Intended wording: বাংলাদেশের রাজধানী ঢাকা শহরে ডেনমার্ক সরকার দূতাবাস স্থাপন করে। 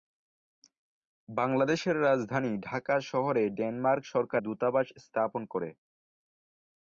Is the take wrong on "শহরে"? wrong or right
right